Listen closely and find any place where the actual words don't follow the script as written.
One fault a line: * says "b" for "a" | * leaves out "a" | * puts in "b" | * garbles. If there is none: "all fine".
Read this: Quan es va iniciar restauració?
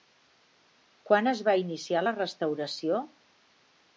* puts in "la"